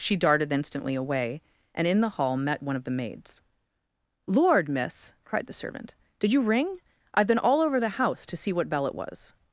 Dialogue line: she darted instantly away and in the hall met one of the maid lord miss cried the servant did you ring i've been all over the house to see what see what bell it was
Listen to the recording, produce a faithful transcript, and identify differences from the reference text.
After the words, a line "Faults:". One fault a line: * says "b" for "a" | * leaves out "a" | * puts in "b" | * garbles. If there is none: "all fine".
she darted instantly away and in the hall met one of the maids lord miss cried the servant did you ring i've been all over the house to see what bell it was
Faults:
* says "maids" for "maid"
* leaves out "see what"